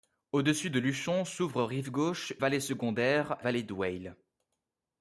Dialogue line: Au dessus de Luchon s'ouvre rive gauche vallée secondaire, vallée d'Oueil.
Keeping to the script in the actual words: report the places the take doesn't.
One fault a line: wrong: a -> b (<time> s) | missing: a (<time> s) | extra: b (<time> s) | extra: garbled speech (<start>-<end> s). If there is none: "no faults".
no faults